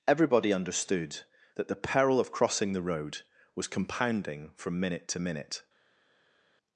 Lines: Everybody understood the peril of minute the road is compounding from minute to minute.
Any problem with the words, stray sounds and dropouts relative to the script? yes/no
yes